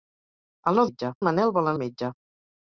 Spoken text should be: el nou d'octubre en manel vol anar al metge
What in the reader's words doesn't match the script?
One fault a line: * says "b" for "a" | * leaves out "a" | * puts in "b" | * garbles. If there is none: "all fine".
* says "metge" for "d'octubre"
* leaves out "anar"